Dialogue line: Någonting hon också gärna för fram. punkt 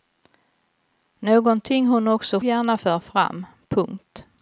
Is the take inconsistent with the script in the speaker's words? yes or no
no